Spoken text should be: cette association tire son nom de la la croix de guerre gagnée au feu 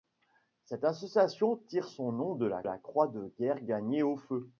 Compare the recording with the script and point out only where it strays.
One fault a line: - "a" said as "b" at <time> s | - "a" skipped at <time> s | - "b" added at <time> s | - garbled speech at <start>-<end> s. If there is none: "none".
none